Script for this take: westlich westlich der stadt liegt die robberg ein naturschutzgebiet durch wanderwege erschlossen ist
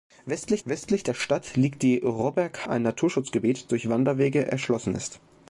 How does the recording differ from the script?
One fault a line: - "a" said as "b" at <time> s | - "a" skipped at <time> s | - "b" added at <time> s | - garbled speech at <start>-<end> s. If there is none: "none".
none